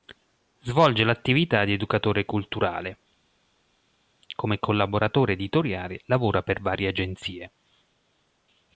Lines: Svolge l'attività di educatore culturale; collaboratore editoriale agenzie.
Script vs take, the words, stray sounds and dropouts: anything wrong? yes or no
yes